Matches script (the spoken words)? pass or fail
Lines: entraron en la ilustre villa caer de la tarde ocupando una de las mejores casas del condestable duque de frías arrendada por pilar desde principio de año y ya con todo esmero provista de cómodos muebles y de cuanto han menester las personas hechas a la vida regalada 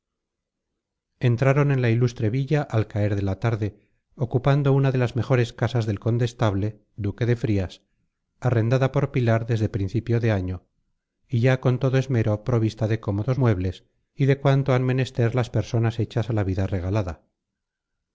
fail